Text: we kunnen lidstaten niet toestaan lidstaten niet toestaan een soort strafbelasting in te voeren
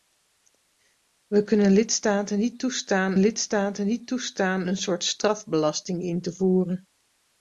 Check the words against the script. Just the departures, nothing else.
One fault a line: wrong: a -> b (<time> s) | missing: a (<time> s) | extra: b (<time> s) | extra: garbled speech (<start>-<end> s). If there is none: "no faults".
no faults